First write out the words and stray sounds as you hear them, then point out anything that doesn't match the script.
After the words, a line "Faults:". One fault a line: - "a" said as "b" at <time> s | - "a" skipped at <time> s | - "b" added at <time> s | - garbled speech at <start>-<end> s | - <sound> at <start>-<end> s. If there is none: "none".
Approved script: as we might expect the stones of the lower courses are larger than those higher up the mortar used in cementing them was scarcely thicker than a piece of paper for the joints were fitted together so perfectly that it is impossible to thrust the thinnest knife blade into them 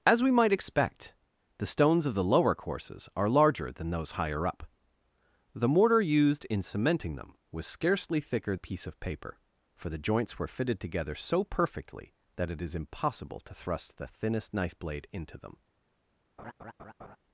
as we might expect the stones of the lower courses are larger than those higher up the mortar used in cementing them was scarcely thicker a piece of paper for the joints were fitted together so perfectly that it is impossible to thrust the thinnest knife blade into them
Faults:
- "than" skipped at 8.5 s
- laugh at 16.4-17.2 s